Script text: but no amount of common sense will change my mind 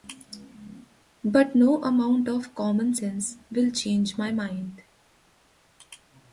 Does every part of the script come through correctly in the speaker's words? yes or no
yes